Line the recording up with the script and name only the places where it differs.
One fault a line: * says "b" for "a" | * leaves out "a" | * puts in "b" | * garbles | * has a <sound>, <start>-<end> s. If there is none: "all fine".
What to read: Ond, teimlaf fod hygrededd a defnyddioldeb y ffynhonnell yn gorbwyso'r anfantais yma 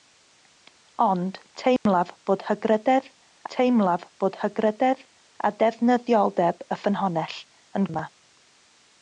* has a dropout, 1.8-1.9 s
* puts in "teimlaf fod hygrededd"
* leaves out "gorbwyso'r anfantais"